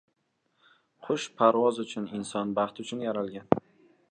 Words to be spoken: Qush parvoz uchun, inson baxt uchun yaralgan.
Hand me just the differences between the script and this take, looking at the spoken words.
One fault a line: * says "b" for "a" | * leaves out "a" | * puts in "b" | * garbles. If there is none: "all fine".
all fine